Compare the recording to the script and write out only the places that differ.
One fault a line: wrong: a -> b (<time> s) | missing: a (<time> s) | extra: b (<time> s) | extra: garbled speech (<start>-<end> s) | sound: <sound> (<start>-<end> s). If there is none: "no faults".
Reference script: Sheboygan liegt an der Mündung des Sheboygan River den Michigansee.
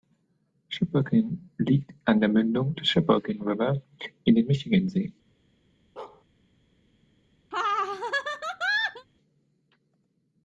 extra: in (4.2 s)
sound: bark (6.0-6.2 s)
sound: laugh (7.5-9.1 s)